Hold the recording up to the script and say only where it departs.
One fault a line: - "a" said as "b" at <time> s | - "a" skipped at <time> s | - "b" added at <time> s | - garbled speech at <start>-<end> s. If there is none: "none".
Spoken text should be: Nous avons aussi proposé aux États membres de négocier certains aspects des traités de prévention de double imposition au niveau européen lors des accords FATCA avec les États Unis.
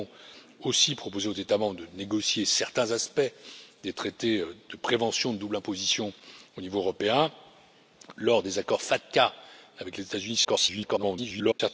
- garbled speech at 10.4-11.6 s